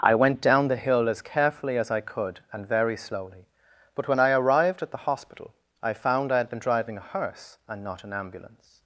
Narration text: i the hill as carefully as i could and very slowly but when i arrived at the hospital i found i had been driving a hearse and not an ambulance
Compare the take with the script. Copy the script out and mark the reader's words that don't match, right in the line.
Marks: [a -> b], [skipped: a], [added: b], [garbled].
i [added: went down] the hill as carefully as i could and very slowly but when i arrived at the hospital i found i had been driving a hearse and not an ambulance